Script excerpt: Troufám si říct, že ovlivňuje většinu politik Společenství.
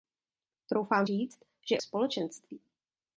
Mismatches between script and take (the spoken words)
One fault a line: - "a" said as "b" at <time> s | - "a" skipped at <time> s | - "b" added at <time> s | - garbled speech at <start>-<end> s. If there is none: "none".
- "si" skipped at 1.1 s
- "ovlivňuje většinu politik" skipped at 1.8 s